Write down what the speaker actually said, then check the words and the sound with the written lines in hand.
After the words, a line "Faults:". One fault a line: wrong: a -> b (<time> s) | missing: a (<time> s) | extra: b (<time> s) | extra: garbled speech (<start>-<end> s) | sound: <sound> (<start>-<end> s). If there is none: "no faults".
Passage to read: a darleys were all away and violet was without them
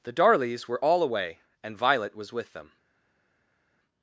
the darleys were all away and violet was with them
Faults:
wrong: a -> the (0.0 s)
wrong: without -> with (2.3 s)